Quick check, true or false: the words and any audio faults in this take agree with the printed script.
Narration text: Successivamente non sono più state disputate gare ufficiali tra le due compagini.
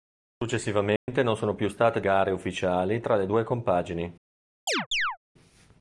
false